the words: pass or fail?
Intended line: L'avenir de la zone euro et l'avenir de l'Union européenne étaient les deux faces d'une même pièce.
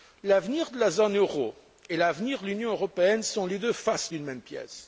fail